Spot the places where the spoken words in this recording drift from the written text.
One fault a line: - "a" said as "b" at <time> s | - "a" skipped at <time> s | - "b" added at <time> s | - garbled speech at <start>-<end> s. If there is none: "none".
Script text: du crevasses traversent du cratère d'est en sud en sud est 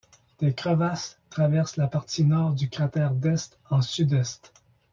- "du" said as "des" at 0.4 s
- "la partie nord" added at 1.8 s
- "en sud" skipped at 4.1 s